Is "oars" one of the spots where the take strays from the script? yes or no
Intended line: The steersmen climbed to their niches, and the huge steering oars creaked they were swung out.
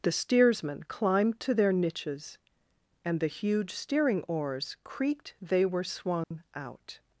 no